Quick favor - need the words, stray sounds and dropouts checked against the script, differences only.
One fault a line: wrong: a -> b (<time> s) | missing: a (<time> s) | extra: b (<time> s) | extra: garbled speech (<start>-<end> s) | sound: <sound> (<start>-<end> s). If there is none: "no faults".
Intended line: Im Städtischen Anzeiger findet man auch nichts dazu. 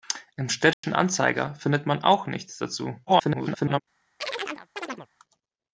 sound: dropout (0.7-0.8 s)
extra: garbled speech (3.1-3.8 s)
sound: chirp (4.2-5.1 s)